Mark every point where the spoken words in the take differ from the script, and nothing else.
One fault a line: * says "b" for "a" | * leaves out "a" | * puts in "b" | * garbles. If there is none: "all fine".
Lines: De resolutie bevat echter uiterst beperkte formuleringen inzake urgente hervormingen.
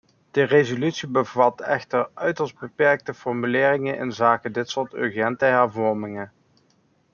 * puts in "dit soort"